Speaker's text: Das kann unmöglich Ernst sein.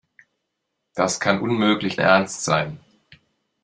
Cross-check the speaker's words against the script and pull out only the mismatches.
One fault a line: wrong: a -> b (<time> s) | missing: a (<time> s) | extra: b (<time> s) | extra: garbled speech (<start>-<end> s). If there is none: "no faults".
no faults